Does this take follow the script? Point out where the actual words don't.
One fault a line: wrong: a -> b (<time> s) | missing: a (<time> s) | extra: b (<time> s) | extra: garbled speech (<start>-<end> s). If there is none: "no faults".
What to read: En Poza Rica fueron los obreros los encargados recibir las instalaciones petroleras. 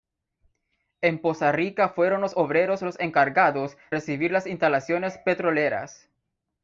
no faults